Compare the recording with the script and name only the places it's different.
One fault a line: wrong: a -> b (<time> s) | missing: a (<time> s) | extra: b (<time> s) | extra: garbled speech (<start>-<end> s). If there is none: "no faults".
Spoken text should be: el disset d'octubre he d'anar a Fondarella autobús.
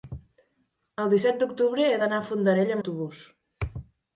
no faults